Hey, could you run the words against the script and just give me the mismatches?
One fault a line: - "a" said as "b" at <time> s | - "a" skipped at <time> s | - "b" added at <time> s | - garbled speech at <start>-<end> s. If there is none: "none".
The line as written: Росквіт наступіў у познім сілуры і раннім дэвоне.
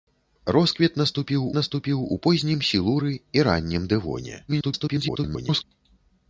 - "наступіў" added at 1.6 s
- garbled speech at 4.5-5.6 s